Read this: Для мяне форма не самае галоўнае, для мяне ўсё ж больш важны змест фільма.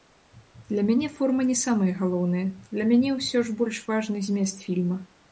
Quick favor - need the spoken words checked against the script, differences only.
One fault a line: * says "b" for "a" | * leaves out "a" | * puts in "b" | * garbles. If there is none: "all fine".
all fine